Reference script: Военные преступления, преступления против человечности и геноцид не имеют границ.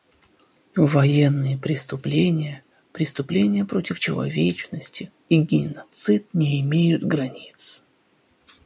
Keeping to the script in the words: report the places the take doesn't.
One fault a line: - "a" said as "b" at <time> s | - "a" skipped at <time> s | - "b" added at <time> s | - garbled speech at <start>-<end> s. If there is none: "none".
none